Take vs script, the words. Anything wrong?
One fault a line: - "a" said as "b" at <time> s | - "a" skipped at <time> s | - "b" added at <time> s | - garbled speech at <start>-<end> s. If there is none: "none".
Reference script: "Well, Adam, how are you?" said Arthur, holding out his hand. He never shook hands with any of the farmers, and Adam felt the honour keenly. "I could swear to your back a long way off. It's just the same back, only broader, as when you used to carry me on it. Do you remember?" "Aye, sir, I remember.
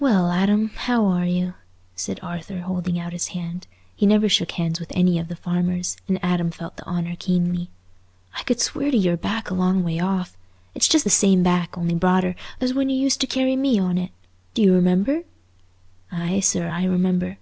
none